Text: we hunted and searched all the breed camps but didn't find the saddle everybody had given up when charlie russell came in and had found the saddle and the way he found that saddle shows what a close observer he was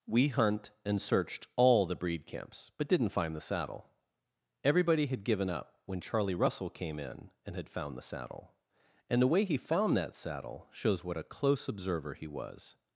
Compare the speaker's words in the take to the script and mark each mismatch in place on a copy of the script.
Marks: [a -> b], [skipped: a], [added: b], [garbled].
we [hunted -> hunt] and searched all the breed camps but didn't find the saddle everybody had given up when charlie russell came in and had found the saddle and the way he found that saddle shows what a close observer he was